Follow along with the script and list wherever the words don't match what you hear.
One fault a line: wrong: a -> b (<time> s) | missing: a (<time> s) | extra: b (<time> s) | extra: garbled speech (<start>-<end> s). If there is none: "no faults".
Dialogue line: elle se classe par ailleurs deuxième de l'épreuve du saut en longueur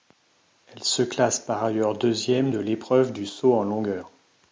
no faults